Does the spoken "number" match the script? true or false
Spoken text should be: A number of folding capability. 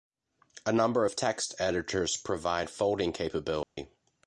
true